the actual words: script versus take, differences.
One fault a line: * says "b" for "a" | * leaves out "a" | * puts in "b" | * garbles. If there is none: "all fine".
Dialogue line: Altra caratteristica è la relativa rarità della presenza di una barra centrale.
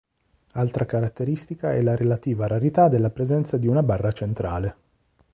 all fine